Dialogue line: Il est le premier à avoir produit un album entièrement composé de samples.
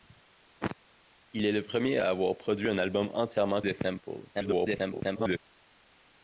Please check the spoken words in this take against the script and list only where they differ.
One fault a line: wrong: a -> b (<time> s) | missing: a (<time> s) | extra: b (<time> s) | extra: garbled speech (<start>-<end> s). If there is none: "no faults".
missing: composé (3.6 s)
extra: garbled speech (4.3-5.4 s)